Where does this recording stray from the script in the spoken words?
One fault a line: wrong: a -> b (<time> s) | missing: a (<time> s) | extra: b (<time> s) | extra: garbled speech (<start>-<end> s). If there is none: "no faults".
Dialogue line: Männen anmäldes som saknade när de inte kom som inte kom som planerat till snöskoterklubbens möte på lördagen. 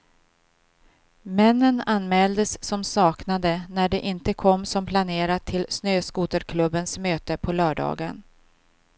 missing: inte kom som (4.9 s)